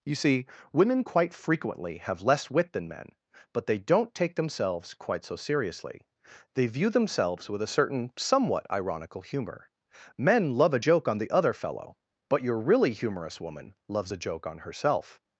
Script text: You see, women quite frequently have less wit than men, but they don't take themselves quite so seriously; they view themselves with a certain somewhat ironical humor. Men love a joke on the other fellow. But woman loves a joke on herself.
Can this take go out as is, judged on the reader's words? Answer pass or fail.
fail